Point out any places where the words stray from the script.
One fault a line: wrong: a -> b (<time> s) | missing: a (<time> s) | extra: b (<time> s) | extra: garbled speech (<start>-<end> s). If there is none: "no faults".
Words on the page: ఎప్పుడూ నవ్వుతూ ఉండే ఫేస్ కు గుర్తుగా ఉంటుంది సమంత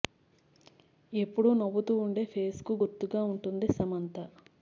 no faults